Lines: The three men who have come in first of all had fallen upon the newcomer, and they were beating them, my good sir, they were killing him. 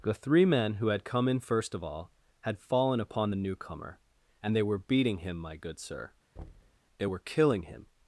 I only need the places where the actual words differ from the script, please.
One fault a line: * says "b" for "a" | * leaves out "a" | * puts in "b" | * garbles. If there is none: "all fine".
* says "had" for "have"
* says "him" for "them"